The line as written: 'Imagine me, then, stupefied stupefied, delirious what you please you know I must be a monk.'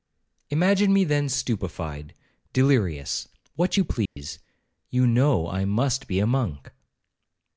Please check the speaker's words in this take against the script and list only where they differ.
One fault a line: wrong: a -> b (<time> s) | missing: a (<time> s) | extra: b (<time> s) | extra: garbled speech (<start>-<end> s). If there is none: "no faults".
missing: stupefied (2.1 s)